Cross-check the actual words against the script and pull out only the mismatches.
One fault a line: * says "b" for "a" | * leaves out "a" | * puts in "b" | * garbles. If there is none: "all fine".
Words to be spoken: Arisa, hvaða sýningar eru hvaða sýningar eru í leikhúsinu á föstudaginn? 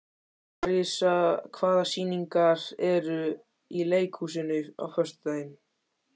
* leaves out "hvaða sýningar eru"